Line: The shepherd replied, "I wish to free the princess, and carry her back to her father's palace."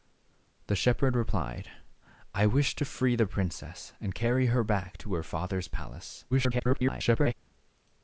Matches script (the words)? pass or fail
fail